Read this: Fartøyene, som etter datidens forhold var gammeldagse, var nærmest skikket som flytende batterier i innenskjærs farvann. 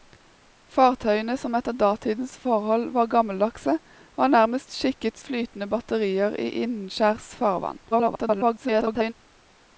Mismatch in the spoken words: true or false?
true